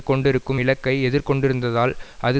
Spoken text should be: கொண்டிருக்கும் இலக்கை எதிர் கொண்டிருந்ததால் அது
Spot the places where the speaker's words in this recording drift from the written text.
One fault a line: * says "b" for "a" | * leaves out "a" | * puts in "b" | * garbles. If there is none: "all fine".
all fine